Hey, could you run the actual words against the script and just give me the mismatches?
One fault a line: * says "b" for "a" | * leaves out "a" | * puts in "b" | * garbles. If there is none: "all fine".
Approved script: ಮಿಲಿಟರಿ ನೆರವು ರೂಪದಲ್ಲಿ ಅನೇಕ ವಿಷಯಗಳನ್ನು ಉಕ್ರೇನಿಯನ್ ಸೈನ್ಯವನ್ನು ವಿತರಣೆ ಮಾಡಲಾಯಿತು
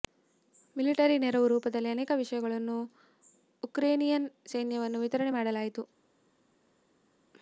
all fine